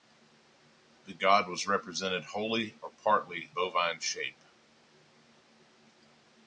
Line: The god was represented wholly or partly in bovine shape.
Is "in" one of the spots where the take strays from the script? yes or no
yes